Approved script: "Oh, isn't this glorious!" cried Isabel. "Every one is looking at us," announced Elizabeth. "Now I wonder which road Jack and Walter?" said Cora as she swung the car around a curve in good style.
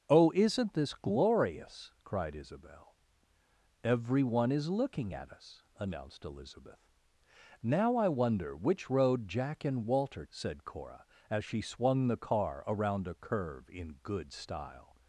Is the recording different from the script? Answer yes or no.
no